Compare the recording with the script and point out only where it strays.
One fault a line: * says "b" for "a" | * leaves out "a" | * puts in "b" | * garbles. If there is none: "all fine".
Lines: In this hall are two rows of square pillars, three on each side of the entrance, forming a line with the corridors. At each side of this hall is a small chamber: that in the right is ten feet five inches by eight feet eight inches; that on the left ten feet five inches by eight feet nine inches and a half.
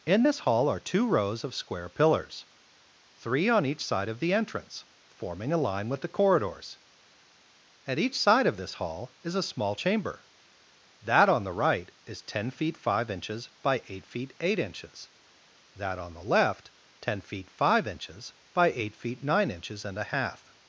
* says "on" for "in"